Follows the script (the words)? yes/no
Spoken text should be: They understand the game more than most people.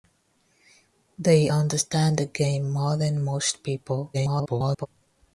no